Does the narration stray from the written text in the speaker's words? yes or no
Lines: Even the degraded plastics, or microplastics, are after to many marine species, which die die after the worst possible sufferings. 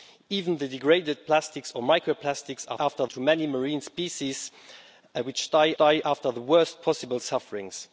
no